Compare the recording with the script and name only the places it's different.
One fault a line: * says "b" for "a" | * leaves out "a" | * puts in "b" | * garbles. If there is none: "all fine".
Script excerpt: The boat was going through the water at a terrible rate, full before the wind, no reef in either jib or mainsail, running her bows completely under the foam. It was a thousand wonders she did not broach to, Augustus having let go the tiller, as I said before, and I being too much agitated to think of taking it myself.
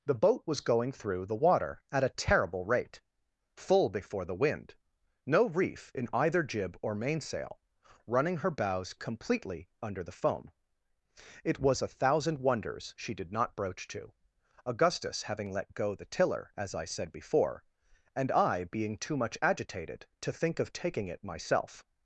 all fine